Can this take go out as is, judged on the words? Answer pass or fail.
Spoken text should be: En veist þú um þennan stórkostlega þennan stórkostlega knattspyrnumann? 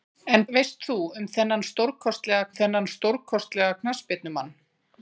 pass